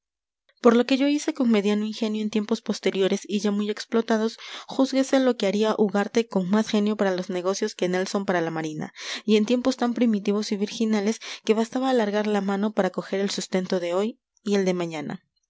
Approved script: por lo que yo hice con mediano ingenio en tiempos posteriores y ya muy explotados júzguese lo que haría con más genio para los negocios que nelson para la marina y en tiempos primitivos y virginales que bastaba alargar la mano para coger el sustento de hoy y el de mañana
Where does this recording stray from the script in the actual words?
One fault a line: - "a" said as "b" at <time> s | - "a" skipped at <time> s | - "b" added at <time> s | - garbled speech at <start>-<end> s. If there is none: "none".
- "ugarte" added at 5.8 s
- "tan" added at 9.8 s